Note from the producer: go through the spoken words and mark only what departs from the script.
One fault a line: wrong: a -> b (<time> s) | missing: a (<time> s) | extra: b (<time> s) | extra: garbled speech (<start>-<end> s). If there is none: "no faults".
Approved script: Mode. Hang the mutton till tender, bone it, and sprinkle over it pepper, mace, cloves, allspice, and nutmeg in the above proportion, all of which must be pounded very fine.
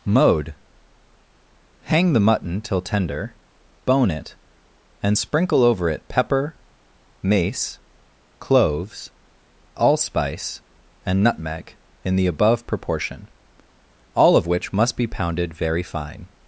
no faults